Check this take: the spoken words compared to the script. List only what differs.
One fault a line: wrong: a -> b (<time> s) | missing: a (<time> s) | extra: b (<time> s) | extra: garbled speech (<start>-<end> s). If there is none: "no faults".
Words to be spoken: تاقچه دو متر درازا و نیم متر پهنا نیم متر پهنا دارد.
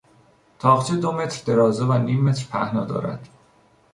missing: نیم متر پهنا (2.8 s)